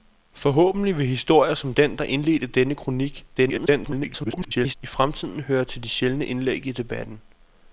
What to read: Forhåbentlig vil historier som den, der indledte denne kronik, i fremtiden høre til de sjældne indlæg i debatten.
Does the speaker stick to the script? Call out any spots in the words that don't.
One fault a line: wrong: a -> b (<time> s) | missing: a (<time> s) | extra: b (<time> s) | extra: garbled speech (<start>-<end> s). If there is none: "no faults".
extra: garbled speech (3.4-4.8 s)